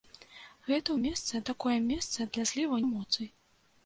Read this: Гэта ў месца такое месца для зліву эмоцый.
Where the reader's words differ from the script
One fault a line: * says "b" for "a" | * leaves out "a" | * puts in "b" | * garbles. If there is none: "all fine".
all fine